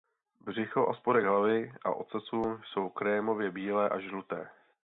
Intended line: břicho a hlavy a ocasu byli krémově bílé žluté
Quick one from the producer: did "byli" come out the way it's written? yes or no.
no